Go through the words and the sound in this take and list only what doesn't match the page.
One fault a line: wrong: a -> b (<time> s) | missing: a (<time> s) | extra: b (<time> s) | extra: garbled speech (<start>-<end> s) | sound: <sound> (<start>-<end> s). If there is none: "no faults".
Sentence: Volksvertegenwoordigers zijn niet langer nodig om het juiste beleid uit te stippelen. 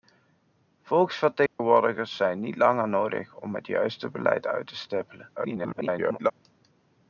sound: dropout (1.5-1.6 s)
extra: garbled speech (5.4-6.3 s)